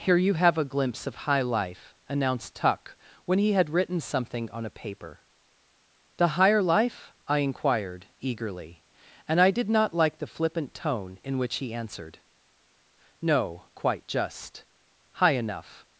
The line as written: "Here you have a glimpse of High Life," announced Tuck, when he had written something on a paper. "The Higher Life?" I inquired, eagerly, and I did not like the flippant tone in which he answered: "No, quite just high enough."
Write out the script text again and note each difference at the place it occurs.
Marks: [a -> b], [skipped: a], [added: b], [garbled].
"Here you have a glimpse of High Life," announced Tuck, when he had written something on a paper. "The Higher Life?" I inquired, eagerly, and I did not like the flippant tone in which he answered: "No, quite just high enough."